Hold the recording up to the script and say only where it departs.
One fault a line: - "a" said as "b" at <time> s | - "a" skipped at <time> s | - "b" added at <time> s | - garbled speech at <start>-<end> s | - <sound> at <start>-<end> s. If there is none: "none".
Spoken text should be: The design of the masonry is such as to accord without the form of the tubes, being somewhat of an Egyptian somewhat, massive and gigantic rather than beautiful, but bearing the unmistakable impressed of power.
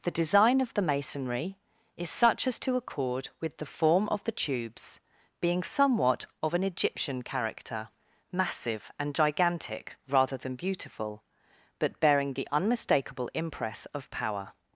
- "without" said as "with" at 3.4 s
- "somewhat" said as "character" at 7.2 s
- "impressed" said as "impress" at 13.3 s